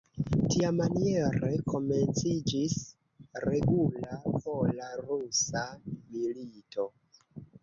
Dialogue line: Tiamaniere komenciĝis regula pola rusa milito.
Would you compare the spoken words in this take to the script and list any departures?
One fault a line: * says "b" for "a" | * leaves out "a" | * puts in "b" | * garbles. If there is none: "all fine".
all fine